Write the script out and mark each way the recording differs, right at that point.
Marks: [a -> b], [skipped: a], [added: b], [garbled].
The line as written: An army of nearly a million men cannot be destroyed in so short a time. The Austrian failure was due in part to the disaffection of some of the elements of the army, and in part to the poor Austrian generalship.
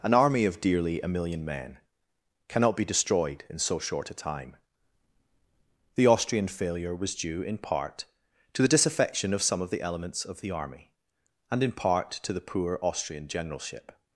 An army of [nearly -> dearly] a million men cannot be destroyed in so short a time. The Austrian failure was due in part to the disaffection of some of the elements of the army, and in part to the poor Austrian generalship.